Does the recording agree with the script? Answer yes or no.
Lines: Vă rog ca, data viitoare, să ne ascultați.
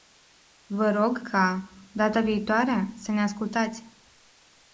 yes